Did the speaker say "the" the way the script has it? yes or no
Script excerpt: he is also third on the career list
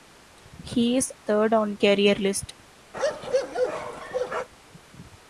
no